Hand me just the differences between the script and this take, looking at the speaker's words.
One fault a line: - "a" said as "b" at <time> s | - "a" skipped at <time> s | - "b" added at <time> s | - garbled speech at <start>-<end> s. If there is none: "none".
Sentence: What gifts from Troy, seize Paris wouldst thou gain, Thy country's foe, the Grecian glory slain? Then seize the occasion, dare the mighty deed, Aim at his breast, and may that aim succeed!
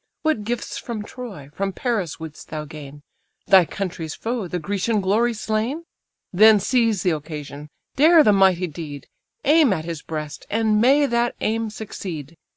- "seize" said as "from" at 1.5 s